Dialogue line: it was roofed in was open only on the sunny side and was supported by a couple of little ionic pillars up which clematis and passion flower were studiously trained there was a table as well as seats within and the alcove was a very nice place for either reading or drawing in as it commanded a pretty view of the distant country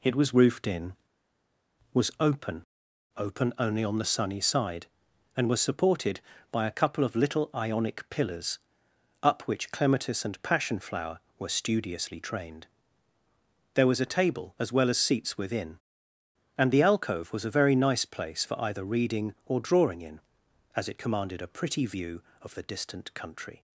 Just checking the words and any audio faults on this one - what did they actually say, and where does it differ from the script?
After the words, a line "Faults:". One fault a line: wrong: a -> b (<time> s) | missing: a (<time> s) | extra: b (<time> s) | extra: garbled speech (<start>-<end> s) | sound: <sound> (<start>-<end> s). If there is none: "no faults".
it was roofed in was open open only on the sunny side and was supported by a couple of little ionic pillars up which clematis and passion flower were studiously trained there was a table as well as seats within and the alcove was a very nice place for either reading or drawing in as it commanded a pretty view of the distant country
Faults:
extra: open (3.1 s)